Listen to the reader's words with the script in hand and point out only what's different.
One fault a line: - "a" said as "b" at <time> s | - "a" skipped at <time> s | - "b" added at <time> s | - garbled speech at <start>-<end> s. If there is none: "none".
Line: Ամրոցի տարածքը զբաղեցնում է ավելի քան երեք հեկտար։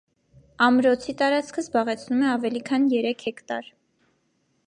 none